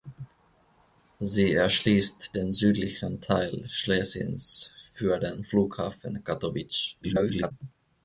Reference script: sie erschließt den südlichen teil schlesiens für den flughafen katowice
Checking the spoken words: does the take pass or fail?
fail